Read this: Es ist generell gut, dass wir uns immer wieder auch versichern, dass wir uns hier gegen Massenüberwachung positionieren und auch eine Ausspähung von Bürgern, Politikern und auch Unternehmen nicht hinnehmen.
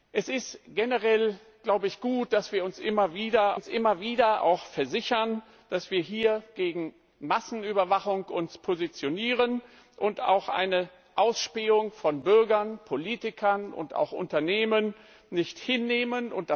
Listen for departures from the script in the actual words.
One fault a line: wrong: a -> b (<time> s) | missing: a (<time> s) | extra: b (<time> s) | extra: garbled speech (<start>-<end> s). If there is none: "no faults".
extra: uns immer wieder (3.5 s)